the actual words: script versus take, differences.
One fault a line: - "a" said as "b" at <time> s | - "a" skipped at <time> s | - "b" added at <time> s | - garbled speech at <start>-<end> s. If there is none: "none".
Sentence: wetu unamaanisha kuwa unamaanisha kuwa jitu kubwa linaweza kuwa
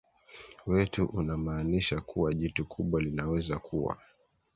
- "unamaanisha kuwa" skipped at 2.3 s